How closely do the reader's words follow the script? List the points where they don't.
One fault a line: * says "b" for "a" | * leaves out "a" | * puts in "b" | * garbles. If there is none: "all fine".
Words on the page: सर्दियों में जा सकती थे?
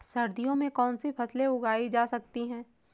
* puts in "कौनसी फसलें उगाई"
* says "हैं" for "थे"